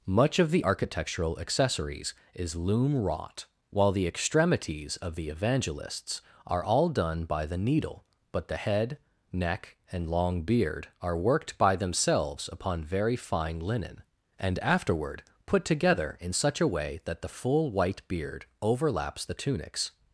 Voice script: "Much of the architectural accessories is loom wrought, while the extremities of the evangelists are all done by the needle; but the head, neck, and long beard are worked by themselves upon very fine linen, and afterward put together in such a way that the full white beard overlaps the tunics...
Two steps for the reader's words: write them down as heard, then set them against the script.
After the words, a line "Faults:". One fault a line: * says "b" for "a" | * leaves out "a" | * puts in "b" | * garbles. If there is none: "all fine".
"Much of the architectural accessories is loom wrought, while the extremities of the evangelists are all done by the needle; but the head, neck, and long beard are worked by themselves upon very fine linen, and afterward put together in such a way that the full white beard overlaps the tunics...
Faults:
all fine